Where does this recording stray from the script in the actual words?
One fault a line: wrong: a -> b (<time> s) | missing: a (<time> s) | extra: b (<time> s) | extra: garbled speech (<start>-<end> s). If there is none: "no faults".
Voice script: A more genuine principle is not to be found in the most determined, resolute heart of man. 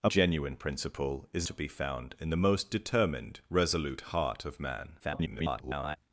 missing: more (0.1 s)
missing: not (1.5 s)
extra: garbled speech (5.0-6.0 s)